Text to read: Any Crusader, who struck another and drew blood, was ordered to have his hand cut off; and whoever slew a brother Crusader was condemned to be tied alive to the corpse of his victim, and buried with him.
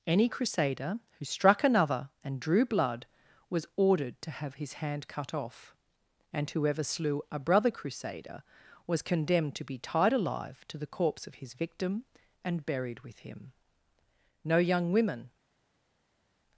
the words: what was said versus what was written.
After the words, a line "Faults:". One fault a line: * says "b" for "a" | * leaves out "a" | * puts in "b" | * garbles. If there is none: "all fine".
Any Crusader, who struck another and drew blood, was ordered to have his hand cut off; and whoever slew a brother Crusader was condemned to be tied alive to the corpse of his victim, and buried with him. No young women
Faults:
* puts in "No young women"